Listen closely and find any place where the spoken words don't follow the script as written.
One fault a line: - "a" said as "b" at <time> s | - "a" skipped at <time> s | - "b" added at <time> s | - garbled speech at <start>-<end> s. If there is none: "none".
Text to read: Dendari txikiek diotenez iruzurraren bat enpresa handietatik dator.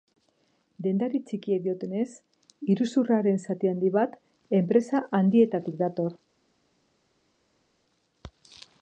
- "zati handi" added at 3.5 s